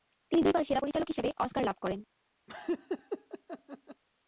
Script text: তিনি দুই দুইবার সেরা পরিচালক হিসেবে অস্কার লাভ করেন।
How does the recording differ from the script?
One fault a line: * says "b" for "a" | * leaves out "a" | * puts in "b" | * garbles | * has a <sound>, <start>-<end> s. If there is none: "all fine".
* leaves out "দুই"
* has a laugh, 2.5-4.0 s